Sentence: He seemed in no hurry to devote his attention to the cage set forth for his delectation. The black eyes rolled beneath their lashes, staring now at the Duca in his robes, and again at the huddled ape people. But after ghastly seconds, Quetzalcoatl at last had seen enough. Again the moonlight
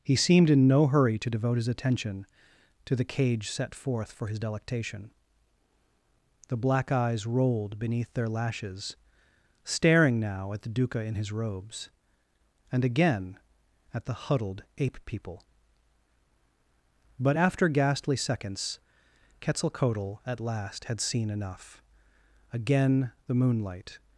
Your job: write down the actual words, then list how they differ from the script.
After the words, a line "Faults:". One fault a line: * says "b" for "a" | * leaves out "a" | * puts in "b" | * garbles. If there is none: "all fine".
He seemed in no hurry to devote his attention to the cage set forth for his delectation. The black eyes rolled beneath their lashes, staring now at the Duca in his robes, and again at the huddled ape people. But after ghastly seconds, Quetzalcoatl at last had seen enough. Again the moonlight
Faults:
all fine